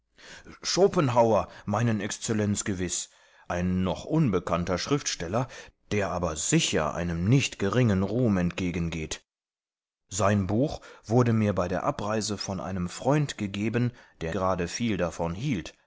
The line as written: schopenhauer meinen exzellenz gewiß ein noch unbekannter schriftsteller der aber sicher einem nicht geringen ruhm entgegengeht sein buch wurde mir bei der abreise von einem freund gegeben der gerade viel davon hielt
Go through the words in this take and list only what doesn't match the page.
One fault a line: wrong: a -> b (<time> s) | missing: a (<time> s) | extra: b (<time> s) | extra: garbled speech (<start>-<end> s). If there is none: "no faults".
no faults